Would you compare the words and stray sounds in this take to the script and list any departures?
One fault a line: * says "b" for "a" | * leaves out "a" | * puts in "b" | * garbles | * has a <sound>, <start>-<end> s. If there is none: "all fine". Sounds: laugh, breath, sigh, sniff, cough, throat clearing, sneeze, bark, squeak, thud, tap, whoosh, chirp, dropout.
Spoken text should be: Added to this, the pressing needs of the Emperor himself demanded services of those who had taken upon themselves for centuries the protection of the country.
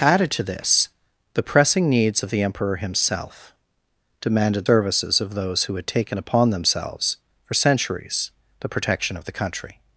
all fine